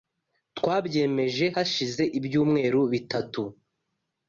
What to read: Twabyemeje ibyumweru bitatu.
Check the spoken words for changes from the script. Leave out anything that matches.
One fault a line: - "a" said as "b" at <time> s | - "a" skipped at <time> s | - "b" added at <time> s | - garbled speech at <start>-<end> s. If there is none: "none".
- "hashize" added at 1.5 s